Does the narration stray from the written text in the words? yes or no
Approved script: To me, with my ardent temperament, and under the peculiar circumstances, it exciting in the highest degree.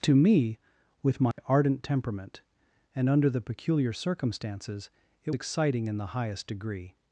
no